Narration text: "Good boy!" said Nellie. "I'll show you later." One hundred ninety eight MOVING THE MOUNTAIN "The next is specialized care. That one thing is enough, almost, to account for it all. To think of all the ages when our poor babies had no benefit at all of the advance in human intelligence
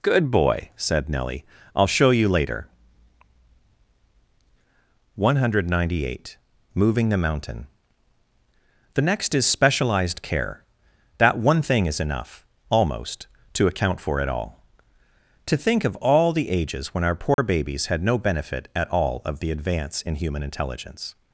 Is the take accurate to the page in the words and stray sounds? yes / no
no